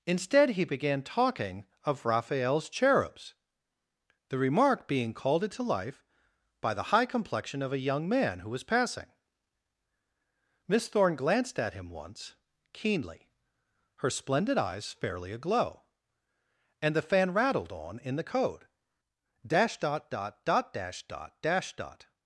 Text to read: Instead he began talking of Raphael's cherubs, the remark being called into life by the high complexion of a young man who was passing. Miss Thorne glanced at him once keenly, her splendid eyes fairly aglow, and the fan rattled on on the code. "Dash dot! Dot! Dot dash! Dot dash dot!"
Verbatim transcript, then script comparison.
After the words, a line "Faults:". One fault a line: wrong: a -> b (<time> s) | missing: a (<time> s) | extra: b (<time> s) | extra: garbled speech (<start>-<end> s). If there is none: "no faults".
Instead he began talking of Raphael's cherubs, the remark being called into life by the high complexion of a young man who was passing. Miss Thorne glanced at him once keenly, her splendid eyes fairly aglow, and the fan rattled on in the code. "Dash dot! Dot! Dot dash! Dot dash dot!"
Faults:
wrong: on -> in (18.0 s)